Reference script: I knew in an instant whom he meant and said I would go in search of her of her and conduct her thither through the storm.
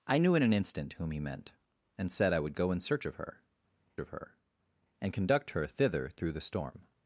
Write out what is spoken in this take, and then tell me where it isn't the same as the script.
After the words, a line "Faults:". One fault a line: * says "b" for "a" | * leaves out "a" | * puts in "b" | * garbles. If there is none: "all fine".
I knew in an instant whom he meant and said I would go in search of her of her and conduct her thither through the storm.
Faults:
all fine